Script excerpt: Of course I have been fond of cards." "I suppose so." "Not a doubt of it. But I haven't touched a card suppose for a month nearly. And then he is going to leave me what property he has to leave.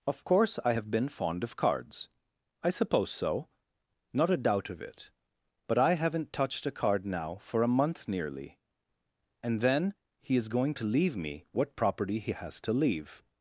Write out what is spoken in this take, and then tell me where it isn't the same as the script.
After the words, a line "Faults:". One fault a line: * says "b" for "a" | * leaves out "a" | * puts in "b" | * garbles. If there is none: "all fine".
Of course I have been fond of cards." "I suppose so." "Not a doubt of it. But I haven't touched a card now for a month nearly. And then he is going to leave me what property he has to leave.
Faults:
* says "now" for "suppose"